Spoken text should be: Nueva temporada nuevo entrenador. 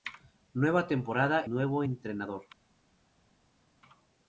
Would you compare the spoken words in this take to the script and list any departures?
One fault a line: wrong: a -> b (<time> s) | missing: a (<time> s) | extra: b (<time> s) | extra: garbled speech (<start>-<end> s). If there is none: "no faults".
no faults